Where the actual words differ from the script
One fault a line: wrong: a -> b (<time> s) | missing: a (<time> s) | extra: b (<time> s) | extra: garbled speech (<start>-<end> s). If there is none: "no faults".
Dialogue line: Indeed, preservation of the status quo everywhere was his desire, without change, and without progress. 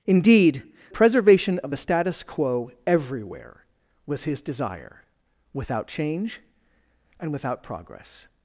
no faults